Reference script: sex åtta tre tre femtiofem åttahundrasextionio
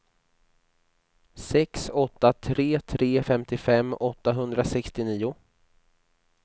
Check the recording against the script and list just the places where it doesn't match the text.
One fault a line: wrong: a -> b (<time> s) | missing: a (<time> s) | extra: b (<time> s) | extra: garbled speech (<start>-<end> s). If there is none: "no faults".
no faults